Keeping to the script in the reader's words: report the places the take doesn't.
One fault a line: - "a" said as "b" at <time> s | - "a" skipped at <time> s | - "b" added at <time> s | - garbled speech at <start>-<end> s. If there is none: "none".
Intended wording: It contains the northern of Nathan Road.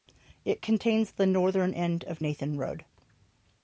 - "end" added at 1.8 s